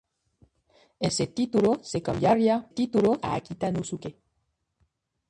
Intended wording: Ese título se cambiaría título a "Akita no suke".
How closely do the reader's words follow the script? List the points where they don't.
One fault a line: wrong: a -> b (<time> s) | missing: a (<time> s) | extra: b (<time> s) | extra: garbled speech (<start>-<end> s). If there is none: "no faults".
no faults